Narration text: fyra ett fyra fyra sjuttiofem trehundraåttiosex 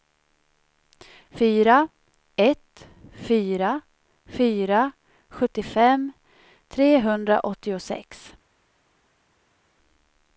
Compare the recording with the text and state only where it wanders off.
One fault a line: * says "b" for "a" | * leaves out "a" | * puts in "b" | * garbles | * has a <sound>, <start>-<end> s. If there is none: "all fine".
all fine